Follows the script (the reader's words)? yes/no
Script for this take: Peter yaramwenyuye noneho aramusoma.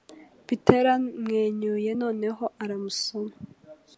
yes